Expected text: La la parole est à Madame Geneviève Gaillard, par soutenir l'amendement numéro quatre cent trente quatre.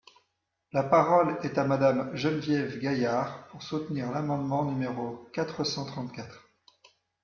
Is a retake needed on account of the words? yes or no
yes